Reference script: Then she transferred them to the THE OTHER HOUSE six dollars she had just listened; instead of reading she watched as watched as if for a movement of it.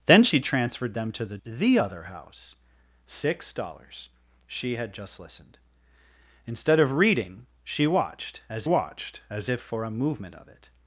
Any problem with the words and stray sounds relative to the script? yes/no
no